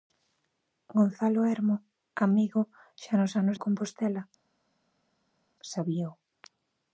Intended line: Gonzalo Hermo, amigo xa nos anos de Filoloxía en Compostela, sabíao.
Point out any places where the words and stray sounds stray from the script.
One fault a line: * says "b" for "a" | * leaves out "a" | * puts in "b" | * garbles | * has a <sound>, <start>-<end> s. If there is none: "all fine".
* leaves out "de Filoloxía"